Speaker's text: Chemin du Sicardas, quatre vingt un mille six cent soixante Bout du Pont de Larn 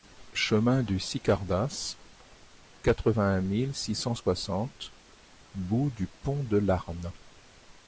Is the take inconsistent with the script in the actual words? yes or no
no